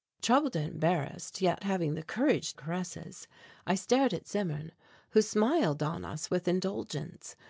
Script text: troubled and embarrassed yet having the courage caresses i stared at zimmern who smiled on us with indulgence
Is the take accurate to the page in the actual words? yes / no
yes